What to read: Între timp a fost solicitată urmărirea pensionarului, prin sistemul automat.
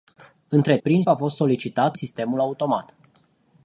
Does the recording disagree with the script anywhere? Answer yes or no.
yes